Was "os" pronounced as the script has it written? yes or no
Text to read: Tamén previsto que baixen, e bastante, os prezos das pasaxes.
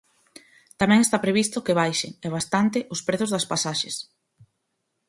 yes